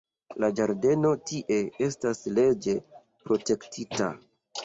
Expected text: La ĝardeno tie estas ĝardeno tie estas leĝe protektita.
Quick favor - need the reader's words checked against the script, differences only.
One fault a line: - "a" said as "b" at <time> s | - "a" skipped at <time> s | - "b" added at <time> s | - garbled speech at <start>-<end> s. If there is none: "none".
- "ĝardeno tie estas" skipped at 2.2 s